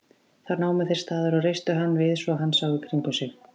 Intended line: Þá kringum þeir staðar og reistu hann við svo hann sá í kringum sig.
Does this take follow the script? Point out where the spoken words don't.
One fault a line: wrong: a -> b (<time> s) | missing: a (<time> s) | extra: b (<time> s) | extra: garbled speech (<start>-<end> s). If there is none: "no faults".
wrong: kringum -> námu (0.6 s)